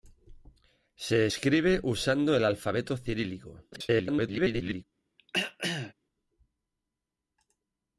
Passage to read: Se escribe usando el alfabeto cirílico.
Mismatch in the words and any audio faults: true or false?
true